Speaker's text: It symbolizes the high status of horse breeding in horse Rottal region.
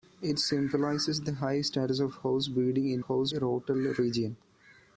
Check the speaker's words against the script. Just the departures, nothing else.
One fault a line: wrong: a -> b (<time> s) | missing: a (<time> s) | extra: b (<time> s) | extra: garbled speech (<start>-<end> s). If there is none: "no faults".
no faults